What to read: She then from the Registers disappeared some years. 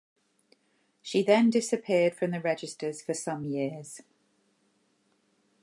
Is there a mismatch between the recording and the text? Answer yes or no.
yes